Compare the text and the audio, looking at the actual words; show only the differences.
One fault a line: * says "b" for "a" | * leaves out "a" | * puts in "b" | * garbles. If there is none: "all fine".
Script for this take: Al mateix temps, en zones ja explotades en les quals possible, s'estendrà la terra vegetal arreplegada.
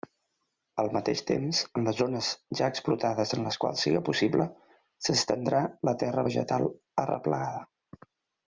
* puts in "les"
* puts in "siga"